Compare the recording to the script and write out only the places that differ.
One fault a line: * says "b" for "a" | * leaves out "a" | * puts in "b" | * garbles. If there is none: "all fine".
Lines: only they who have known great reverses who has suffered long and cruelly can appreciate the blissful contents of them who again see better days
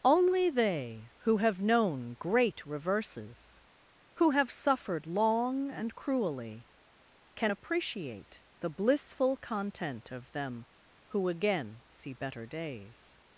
* says "have" for "has"
* says "content" for "contents"